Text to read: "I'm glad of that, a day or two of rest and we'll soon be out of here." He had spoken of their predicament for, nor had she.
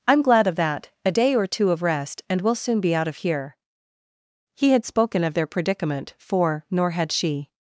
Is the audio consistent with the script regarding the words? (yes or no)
yes